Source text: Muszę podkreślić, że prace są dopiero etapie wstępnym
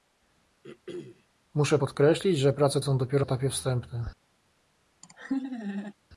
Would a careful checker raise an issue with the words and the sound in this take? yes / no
yes